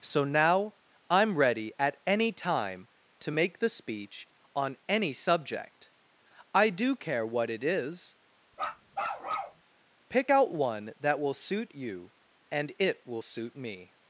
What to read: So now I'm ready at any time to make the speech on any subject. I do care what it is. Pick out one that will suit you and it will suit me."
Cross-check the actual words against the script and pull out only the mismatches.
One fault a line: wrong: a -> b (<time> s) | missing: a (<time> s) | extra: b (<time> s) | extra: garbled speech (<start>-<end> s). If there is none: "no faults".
no faults